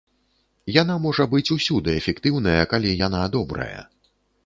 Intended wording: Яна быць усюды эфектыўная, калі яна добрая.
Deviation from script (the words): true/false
true